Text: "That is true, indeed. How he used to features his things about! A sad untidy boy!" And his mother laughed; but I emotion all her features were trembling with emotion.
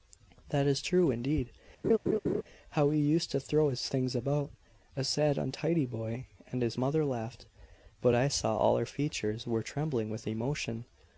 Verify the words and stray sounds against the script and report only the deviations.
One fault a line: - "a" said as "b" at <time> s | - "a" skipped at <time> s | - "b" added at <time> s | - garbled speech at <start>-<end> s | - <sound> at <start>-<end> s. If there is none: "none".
- laugh at 1.8-2.4 s
- "features" said as "throw" at 3.4 s
- "emotion" said as "saw" at 8.3 s